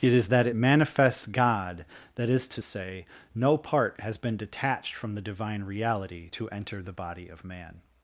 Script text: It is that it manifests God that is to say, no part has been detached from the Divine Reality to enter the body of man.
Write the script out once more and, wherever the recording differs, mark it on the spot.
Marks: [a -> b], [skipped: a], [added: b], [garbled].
It is that it manifests God that is to say, no part has been detached from the Divine Reality to enter the body of man.